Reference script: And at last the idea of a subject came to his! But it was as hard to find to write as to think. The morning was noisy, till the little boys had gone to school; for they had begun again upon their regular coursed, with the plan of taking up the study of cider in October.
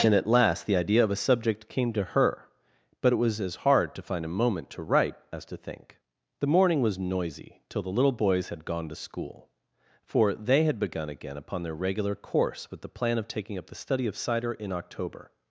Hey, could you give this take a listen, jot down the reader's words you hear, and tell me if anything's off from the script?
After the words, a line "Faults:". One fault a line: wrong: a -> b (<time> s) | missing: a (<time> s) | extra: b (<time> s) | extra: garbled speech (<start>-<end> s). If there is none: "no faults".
And at last the idea of a subject came to her! But it was as hard to find a moment to write as to think. The morning was noisy, till the little boys had gone to school; for they had begun again upon their regular course, with the plan of taking up the study of cider in October.
Faults:
wrong: his -> her (2.0 s)
extra: a moment (4.2 s)
wrong: coursed -> course (12.2 s)